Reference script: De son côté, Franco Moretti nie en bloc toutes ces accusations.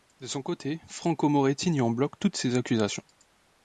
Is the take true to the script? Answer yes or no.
yes